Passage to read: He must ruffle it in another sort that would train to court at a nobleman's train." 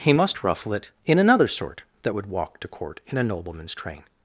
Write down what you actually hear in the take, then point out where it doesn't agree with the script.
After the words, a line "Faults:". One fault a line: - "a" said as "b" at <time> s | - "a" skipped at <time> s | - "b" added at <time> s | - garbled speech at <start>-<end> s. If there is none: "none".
He must ruffle it in another sort that would walk to court in a nobleman's train."
Faults:
- "train" said as "walk" at 2.3 s
- "at" said as "in" at 3.1 s